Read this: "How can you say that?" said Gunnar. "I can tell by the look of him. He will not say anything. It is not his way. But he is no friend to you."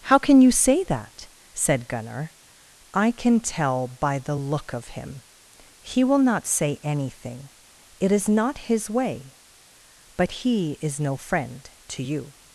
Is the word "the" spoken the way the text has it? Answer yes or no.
yes